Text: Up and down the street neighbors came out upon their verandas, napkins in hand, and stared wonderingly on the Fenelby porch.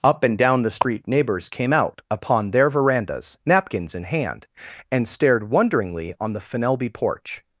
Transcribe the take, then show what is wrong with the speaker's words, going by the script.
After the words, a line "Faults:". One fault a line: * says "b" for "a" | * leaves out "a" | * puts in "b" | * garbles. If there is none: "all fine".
Up and down the street neighbors came out upon their verandas, napkins in hand, and stared wonderingly on the Fenelby porch.
Faults:
all fine